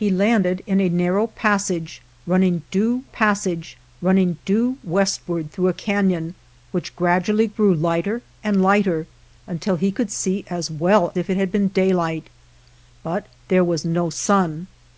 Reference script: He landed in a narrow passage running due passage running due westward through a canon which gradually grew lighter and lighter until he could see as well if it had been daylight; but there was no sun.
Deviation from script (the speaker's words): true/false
false